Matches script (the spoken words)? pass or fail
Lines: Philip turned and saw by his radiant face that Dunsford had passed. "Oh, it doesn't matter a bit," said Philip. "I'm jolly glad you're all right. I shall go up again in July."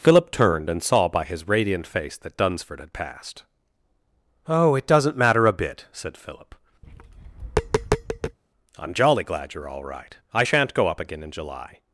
fail